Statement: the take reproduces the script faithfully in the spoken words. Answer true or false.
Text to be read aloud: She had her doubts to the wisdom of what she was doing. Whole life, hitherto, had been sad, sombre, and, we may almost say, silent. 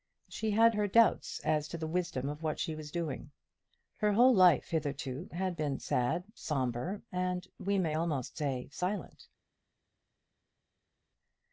false